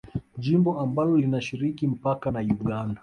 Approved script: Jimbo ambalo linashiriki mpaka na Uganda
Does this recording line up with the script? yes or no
yes